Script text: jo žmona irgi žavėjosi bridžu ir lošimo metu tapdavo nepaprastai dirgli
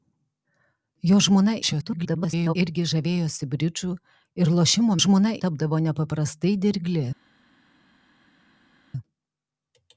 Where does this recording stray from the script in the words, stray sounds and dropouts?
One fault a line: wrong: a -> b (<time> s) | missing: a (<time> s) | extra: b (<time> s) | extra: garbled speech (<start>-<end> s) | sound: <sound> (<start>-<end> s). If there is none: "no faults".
extra: garbled speech (1.6-2.6 s)
wrong: metu -> žmona (5.0 s)